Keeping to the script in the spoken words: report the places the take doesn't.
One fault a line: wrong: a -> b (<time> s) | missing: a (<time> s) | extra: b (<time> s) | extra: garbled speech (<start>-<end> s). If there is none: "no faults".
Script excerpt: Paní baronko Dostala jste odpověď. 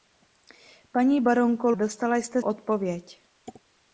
no faults